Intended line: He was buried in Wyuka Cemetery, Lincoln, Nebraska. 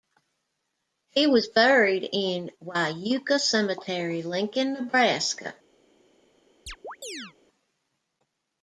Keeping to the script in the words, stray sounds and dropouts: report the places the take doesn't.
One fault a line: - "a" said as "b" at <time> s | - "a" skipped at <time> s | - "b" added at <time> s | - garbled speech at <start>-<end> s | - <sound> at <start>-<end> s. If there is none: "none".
- chirp at 6.7-7.3 s